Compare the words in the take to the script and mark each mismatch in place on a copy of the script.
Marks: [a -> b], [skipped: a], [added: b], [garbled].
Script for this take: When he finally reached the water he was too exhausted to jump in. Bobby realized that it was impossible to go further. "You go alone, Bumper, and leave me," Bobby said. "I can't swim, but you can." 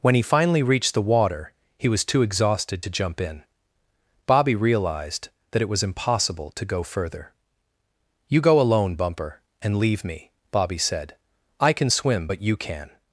When he finally reached the water he was too exhausted to jump in. Bobby realized that it was impossible to go further. "You go alone, Bumper, and leave me," Bobby said. "I [can't -> can] swim, but you can."